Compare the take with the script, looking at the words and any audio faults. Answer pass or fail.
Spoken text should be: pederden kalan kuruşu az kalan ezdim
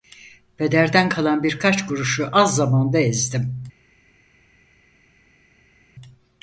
fail